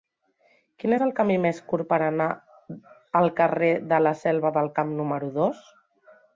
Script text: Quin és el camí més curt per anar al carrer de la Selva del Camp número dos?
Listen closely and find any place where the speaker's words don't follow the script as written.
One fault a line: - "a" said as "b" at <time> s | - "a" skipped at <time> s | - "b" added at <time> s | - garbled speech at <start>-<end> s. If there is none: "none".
none